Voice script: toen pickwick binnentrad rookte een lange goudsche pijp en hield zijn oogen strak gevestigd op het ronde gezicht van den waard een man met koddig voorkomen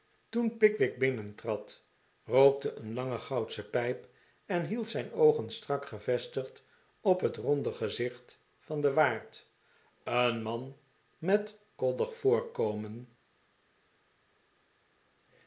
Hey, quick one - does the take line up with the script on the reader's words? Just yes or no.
yes